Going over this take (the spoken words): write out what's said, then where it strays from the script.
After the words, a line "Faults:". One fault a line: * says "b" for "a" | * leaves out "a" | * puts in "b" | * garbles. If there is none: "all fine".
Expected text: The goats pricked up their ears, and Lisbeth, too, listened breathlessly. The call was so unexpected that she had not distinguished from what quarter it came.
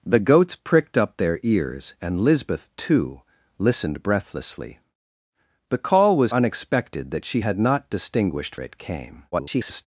The goats pricked up their ears, and Lisbeth, too, listened breathlessly. The call was unexpected that she had not distinguished it came. [garbled]
Faults:
* leaves out "so"
* leaves out "from what quarter"
* garbles